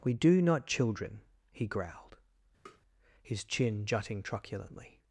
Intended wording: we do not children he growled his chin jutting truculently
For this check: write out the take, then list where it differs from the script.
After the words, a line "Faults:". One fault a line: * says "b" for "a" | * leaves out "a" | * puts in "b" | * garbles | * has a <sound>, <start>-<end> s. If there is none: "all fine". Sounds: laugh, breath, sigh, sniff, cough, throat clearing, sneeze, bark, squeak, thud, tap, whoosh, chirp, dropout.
we do not children he growled his chin jutting truculently
Faults:
* has a tap, 2.7-2.8 s